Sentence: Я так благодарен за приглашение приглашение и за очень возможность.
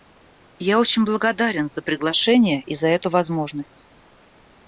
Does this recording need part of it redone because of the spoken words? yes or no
yes